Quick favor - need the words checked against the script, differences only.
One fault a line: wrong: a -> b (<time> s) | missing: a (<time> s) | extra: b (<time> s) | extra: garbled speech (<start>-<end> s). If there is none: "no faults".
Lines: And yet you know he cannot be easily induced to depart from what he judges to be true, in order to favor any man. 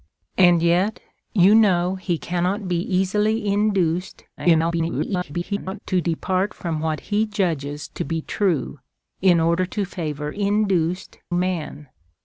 extra: garbled speech (4.4-5.8 s)
wrong: any -> induced (10.4 s)